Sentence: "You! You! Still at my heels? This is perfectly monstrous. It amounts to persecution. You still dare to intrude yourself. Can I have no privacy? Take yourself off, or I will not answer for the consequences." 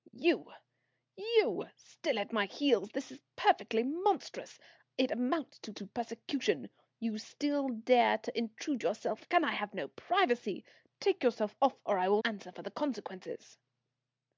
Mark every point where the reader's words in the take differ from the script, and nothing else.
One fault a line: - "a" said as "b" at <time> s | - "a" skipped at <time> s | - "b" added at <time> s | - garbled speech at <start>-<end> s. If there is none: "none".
- "to" added at 5.7 s
- "not" skipped at 12.2 s